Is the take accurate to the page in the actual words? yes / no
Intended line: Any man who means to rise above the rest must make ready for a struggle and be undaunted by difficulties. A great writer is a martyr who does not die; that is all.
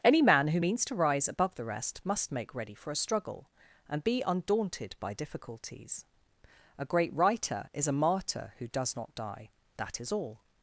yes